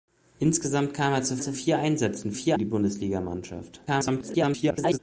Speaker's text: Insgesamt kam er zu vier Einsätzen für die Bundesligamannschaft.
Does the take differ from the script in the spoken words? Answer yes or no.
yes